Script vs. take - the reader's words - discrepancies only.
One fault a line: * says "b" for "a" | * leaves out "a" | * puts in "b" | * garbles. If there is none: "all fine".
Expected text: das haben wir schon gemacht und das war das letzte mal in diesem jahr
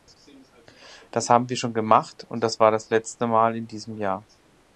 all fine